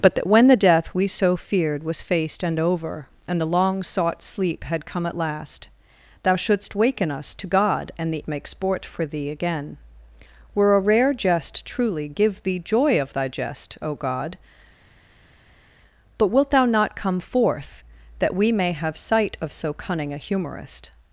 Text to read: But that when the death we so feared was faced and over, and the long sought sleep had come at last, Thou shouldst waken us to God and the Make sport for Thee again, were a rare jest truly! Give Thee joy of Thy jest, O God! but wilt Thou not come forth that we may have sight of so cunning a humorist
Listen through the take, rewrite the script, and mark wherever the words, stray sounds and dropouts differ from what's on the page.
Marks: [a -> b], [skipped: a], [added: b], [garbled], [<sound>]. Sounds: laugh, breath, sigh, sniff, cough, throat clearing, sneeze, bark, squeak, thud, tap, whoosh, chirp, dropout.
But that when the death we so feared was faced and over, and the long sought sleep had come at last, Thou shouldst waken us to God and the Make sport for Thee again, were a rare jest truly! Give Thee joy of Thy jest, O God! but wilt Thou not come forth that we may have sight of so cunning a humorist